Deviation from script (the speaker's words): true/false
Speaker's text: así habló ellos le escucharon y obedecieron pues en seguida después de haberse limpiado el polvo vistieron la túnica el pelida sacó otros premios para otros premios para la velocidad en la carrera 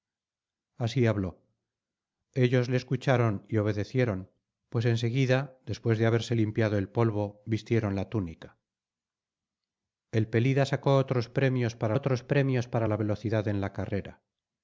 false